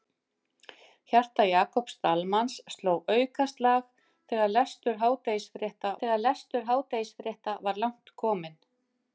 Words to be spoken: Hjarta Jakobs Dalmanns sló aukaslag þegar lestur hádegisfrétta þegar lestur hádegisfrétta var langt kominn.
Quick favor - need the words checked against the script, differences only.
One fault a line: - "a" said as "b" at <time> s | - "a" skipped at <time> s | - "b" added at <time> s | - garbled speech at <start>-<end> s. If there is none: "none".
none